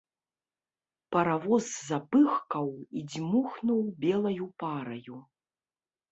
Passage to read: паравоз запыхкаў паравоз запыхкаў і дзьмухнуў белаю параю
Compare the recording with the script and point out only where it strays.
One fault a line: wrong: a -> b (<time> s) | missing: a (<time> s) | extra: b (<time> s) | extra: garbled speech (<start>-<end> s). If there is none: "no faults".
missing: паравоз запыхкаў (2.7 s)